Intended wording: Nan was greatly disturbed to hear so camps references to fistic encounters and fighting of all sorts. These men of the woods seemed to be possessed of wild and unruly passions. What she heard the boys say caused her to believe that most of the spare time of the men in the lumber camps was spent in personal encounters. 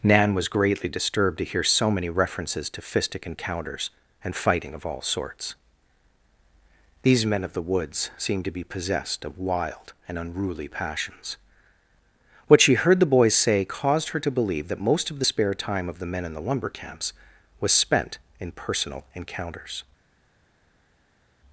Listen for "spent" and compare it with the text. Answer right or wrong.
right